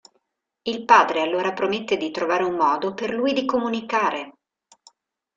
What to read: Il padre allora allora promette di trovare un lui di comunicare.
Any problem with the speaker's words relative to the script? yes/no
yes